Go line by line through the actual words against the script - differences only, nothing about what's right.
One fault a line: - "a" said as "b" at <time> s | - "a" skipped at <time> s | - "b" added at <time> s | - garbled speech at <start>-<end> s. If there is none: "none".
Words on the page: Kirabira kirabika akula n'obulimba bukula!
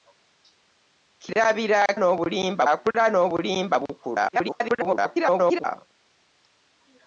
- "kirabika" said as "n'obulimba" at 2.0 s
- garbled speech at 4.3-5.7 s